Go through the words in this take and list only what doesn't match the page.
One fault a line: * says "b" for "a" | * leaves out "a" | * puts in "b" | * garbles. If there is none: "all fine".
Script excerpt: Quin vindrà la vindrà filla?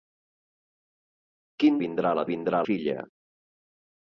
all fine